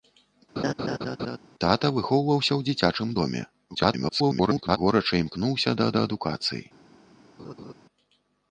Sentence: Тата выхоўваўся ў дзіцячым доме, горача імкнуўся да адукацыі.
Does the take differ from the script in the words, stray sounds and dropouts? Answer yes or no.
yes